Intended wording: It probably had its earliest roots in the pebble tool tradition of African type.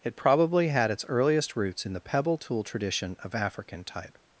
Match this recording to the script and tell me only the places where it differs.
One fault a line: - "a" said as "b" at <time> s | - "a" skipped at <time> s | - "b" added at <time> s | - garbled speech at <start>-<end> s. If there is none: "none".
none